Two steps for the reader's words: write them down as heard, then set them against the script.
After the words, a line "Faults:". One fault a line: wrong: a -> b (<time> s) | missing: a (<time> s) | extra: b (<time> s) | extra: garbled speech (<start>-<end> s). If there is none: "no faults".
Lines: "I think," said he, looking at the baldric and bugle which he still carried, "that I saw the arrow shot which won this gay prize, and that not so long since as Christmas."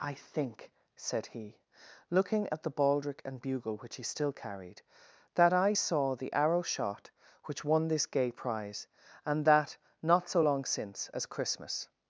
"I think," said he, looking at the baldric and bugle which he still carried, "that I saw the arrow shot which won this gay prize, and that not so long since as Christmas."
Faults:
no faults